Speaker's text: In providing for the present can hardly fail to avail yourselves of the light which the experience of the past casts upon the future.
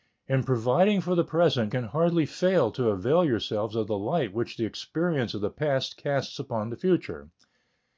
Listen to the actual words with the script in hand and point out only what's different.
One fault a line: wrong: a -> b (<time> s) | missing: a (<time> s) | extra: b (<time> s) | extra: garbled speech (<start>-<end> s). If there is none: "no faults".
no faults